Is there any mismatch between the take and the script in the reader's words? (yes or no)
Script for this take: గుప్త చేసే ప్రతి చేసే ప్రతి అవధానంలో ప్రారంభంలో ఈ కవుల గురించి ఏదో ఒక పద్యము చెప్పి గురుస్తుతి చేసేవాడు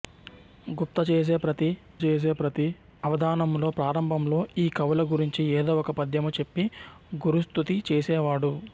no